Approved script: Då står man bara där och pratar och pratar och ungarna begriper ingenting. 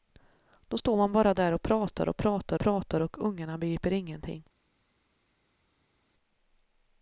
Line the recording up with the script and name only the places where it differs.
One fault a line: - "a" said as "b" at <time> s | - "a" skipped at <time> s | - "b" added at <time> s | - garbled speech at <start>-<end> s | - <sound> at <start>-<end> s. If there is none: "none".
- "pratar" added at 2.6 s